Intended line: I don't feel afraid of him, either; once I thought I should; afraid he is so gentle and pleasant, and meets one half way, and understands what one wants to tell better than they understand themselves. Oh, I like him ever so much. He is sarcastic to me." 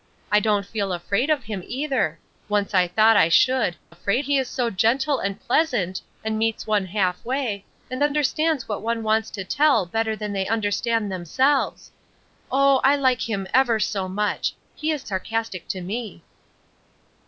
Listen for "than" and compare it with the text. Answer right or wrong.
right